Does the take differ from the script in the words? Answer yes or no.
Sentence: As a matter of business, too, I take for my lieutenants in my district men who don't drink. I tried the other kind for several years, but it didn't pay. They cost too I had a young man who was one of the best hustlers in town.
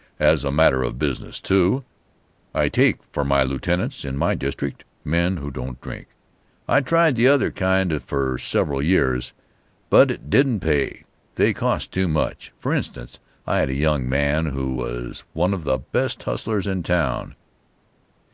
yes